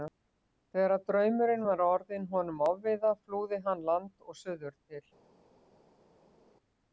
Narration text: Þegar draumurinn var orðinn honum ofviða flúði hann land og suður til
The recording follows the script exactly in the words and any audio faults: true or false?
true